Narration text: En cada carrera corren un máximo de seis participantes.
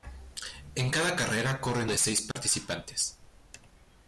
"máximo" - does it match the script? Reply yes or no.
no